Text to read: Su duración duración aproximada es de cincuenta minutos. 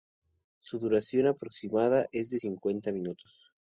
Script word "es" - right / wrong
right